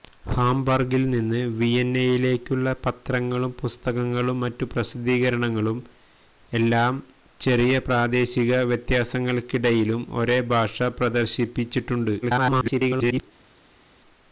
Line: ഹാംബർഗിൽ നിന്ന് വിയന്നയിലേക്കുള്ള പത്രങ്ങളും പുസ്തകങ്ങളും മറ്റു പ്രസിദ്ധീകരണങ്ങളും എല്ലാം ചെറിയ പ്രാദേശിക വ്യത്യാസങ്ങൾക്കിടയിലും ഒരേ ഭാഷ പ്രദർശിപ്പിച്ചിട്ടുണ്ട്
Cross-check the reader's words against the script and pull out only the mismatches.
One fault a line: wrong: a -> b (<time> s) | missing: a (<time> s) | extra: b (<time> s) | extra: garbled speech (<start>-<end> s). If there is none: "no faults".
extra: garbled speech (12.2-13.2 s)